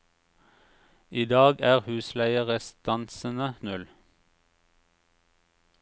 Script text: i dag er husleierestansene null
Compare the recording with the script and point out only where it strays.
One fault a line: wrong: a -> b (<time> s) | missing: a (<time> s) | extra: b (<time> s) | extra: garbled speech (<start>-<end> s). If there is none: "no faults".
no faults